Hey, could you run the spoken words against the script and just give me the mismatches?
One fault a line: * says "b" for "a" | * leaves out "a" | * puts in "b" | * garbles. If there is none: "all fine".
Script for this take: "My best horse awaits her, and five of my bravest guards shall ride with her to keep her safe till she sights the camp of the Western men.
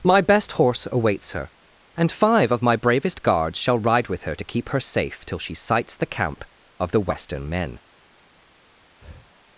all fine